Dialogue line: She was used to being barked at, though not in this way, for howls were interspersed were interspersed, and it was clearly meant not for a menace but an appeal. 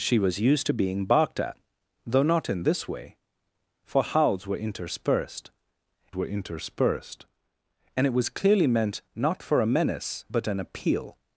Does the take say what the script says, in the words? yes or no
yes